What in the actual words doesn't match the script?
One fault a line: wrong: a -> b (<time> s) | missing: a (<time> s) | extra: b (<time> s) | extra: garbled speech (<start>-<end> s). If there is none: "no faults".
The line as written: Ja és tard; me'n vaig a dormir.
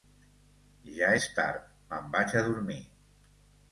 no faults